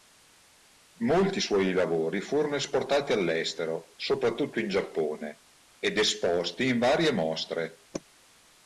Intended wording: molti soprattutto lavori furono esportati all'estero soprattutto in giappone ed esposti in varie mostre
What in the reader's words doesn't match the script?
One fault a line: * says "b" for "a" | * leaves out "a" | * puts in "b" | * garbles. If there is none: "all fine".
* says "suoi" for "soprattutto"